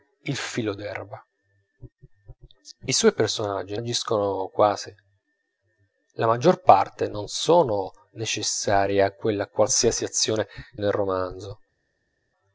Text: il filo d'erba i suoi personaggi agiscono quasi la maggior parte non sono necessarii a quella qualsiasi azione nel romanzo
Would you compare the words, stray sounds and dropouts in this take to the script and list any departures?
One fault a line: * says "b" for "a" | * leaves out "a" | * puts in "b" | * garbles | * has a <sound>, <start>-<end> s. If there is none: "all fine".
all fine